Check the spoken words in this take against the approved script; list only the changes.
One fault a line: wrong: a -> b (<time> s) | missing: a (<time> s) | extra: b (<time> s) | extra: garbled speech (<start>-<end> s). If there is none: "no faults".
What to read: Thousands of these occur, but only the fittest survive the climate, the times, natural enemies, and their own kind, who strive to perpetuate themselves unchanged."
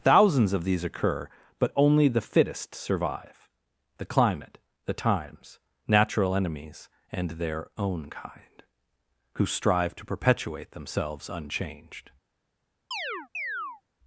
no faults